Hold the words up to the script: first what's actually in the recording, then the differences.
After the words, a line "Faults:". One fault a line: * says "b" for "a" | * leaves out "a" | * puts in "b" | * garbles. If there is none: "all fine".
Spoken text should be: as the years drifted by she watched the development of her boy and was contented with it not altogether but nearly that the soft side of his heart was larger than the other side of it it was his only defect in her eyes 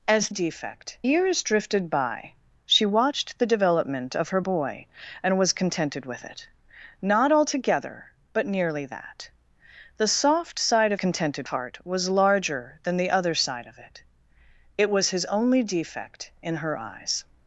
as defect years drifted by she watched the development of her boy and was contented with it not altogether but nearly that the soft side of contented heart was larger than the other side of it it was his only defect in her eyes
Faults:
* says "defect" for "the"
* says "contented" for "his"